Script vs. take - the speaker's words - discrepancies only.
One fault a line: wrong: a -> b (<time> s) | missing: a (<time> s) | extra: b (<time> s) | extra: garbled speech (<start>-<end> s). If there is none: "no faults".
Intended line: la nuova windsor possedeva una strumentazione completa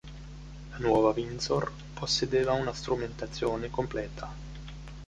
no faults